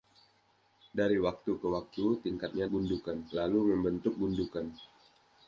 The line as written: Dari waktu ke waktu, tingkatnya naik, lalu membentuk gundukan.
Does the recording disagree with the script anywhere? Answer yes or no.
yes